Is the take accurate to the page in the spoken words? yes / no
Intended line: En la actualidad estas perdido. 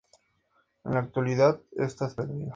yes